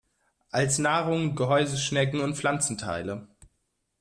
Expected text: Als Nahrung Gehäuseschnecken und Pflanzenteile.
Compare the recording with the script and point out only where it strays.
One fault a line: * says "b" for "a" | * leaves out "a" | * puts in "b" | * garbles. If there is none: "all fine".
all fine